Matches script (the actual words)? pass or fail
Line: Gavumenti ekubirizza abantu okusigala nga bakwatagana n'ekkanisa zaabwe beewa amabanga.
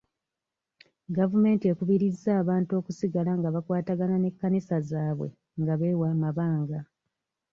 fail